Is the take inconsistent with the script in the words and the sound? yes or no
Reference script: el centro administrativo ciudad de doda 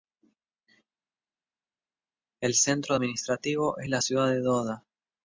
yes